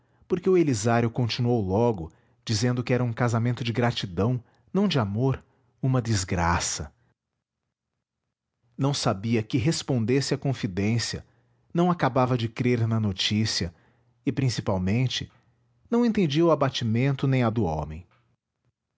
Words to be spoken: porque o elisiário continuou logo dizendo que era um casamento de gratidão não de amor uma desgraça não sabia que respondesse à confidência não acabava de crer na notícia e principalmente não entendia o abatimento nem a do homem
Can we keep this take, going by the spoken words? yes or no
yes